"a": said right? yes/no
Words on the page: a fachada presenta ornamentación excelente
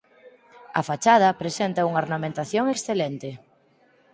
yes